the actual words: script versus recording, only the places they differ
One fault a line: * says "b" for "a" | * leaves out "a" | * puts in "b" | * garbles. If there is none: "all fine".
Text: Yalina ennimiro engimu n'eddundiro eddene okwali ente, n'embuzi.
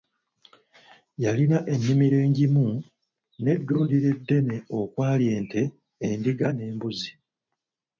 * puts in "endiga"